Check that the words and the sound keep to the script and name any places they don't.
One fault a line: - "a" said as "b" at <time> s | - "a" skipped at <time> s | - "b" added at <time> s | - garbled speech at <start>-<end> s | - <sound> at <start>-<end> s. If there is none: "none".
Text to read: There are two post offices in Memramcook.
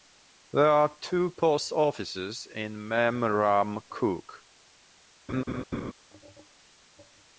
- laugh at 5.3-5.9 s